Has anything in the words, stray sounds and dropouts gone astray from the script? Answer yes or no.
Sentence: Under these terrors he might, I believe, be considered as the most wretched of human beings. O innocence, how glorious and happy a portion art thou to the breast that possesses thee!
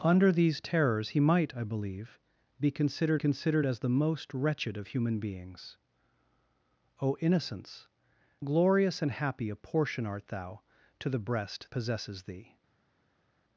yes